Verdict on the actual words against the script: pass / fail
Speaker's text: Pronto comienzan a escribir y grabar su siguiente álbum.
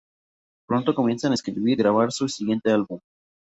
fail